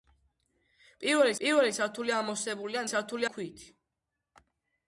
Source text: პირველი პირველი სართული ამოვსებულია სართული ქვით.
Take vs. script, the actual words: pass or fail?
pass